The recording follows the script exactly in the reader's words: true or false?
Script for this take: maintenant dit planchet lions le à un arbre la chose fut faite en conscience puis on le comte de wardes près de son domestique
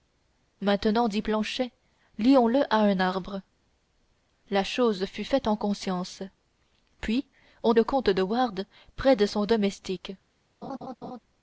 true